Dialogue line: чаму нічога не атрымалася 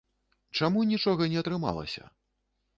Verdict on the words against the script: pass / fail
pass